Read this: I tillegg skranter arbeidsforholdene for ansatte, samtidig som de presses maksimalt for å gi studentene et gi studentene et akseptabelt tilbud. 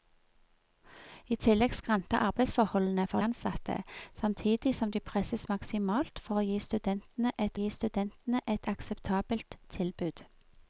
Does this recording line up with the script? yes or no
yes